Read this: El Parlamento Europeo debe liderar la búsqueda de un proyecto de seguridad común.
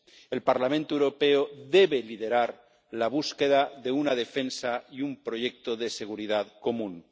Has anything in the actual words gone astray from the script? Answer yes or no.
yes